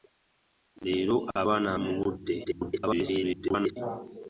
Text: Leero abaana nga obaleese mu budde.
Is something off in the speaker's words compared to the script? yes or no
yes